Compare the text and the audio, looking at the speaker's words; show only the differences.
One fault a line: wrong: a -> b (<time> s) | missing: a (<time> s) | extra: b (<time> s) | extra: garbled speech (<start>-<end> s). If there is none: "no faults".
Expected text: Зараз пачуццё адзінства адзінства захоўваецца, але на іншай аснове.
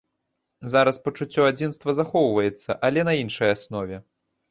missing: адзінства (2.0 s)